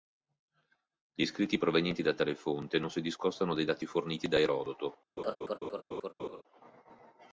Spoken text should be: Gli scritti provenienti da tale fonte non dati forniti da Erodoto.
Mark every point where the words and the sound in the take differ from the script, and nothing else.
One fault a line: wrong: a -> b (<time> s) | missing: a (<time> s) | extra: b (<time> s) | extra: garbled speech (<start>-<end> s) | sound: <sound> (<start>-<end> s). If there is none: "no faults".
extra: si discostano dai (2.9 s)
sound: laugh (5.2-6.4 s)